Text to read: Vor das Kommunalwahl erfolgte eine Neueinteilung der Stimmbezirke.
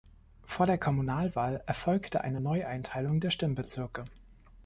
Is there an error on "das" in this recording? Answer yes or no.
yes